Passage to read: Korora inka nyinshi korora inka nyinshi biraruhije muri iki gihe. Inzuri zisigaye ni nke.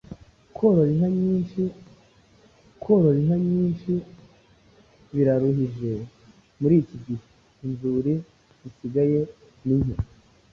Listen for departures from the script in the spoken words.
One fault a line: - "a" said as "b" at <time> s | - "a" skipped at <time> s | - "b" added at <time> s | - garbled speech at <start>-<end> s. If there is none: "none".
none